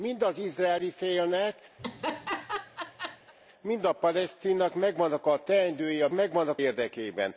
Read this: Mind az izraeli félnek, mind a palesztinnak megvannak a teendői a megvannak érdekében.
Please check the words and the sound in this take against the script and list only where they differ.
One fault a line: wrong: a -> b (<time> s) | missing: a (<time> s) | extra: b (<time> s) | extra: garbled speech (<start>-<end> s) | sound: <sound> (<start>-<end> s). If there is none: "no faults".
sound: laugh (1.8-3.3 s)